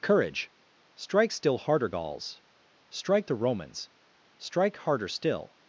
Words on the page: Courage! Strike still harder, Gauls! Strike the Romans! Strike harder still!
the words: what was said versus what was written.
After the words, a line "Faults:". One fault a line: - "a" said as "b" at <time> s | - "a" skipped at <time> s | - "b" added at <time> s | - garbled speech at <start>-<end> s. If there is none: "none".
Courage! Strike still harder, Gauls! Strike the Romans! Strike harder still!
Faults:
none